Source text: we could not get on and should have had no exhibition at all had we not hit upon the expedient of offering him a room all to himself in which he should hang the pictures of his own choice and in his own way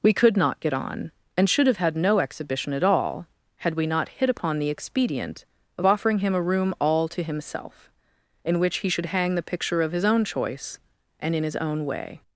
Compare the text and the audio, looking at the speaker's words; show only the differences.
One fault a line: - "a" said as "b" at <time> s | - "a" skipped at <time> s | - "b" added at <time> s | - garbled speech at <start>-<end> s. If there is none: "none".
- "pictures" said as "picture" at 9.4 s